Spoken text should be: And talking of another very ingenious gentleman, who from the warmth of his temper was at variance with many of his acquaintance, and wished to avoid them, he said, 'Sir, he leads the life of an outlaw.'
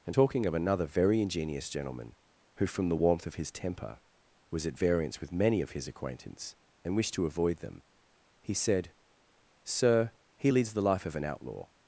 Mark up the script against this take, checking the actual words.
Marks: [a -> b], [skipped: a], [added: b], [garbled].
And talking of another very ingenious gentleman, who from the warmth of his temper was at variance with many of his acquaintance, and wished to avoid them, he said, 'Sir, he leads the life of an outlaw.'